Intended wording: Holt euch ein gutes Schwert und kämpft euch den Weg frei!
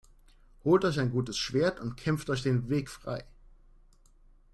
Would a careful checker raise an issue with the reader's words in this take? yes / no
no